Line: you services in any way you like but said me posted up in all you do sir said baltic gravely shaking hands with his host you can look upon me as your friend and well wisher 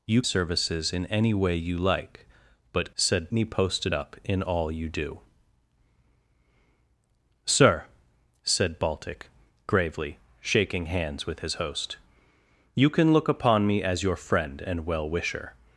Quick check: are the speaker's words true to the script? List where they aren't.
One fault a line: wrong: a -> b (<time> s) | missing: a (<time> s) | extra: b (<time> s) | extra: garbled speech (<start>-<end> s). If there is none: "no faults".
no faults